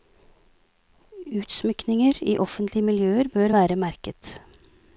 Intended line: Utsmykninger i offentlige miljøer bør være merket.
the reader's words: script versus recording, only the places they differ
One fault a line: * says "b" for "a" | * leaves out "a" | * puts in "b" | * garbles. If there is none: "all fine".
all fine